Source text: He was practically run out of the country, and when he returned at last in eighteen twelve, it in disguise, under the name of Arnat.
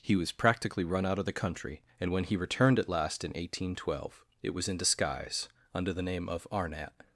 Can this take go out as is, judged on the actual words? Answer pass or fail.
fail